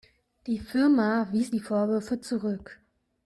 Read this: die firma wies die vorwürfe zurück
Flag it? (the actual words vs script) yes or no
no